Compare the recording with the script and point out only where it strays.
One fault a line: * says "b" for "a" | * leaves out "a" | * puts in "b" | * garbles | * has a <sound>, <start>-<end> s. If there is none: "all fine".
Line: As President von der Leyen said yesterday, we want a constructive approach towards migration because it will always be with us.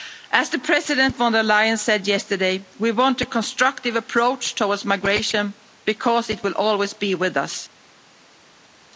all fine